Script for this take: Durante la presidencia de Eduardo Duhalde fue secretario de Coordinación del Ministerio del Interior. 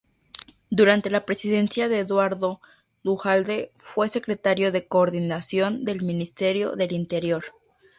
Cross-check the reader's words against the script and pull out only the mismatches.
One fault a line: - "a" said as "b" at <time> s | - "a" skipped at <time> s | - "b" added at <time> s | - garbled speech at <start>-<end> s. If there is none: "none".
none